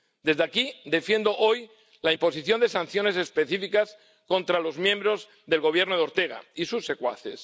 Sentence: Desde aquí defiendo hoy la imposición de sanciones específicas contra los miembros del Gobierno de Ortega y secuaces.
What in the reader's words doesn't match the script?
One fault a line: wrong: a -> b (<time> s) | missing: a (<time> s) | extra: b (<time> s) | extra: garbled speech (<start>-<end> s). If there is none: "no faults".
extra: sus (6.6 s)